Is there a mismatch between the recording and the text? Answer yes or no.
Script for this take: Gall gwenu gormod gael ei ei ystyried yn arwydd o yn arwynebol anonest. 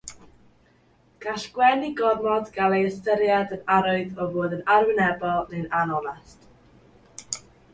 yes